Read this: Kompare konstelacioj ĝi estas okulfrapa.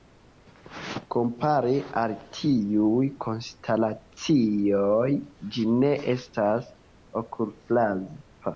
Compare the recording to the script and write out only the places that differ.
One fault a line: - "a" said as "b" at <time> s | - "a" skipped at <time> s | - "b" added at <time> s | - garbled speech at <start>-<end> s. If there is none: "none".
- "al tiuj" added at 2.0 s
- "ne" added at 5.8 s